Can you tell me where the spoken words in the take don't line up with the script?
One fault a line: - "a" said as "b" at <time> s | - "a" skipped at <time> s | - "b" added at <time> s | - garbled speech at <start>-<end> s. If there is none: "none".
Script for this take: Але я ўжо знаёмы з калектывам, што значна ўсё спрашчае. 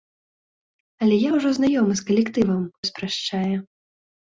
- "што значна ўсё" skipped at 2.6 s